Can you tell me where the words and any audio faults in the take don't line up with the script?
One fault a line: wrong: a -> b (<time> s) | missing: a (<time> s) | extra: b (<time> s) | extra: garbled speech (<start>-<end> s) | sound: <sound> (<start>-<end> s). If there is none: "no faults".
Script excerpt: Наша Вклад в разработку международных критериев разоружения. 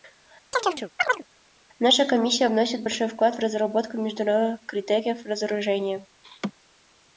sound: chirp (0.5-1.3 s)
extra: Комиссия вносит большой (2.0 s)
sound: laugh (6.2-6.5 s)